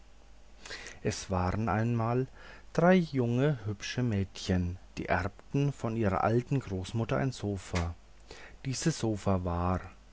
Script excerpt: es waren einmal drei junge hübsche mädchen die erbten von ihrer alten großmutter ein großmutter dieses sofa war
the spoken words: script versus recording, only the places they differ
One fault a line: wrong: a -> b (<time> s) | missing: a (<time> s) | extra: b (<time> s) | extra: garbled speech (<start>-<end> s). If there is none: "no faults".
wrong: großmutter -> sofa (7.3 s)